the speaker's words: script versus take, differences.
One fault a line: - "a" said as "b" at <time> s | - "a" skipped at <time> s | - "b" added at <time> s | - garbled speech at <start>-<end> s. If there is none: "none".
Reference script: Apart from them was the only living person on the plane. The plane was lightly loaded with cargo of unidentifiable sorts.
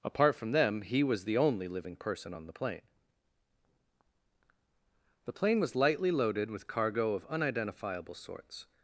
- "he" added at 0.8 s